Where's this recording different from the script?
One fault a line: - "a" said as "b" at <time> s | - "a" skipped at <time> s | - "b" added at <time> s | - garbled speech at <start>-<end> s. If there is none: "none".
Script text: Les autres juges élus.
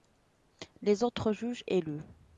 none